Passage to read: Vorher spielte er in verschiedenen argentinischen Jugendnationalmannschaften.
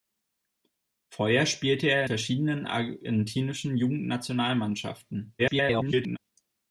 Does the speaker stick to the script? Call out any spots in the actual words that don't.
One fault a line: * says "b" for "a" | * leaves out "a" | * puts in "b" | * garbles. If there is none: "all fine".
* leaves out "in"
* garbles